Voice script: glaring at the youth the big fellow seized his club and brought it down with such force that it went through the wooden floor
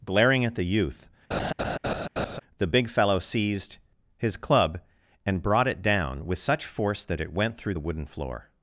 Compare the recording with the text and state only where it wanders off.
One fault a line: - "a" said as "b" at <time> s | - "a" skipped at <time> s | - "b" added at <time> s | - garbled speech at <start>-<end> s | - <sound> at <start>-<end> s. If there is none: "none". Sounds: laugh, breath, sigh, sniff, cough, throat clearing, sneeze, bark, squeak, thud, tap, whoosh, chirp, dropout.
- laugh at 1.3-2.4 s